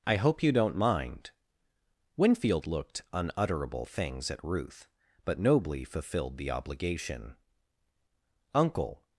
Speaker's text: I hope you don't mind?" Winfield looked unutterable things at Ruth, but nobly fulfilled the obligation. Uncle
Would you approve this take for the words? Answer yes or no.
yes